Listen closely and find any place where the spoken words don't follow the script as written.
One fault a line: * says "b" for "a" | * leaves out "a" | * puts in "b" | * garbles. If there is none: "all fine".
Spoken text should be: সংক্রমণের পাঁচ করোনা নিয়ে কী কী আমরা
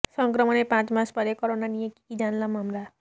* puts in "মাস পরে"
* puts in "জানলাম"